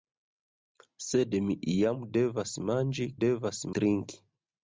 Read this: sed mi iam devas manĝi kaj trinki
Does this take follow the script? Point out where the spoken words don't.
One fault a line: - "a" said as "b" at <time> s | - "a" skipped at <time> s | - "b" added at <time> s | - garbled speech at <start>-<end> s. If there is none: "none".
- "kaj" said as "devas" at 3.3 s